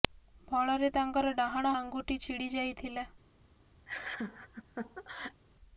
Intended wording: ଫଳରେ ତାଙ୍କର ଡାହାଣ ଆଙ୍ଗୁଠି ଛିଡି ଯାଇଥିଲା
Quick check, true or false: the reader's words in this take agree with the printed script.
true